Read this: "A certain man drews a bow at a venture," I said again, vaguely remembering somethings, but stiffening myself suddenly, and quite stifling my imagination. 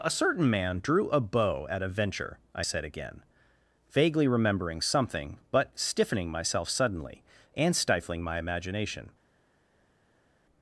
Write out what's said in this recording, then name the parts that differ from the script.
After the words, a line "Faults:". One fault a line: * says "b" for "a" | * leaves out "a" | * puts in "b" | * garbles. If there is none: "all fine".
"A certain man drew a bow at a venture," I said again, vaguely remembering something, but stiffening myself suddenly, and stifling my imagination.
Faults:
* says "drew" for "drews"
* says "something" for "somethings"
* leaves out "quite"